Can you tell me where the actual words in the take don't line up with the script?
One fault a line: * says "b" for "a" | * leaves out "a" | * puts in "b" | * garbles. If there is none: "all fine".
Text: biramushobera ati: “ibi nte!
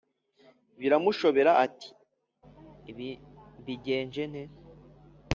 * puts in "mbigenje"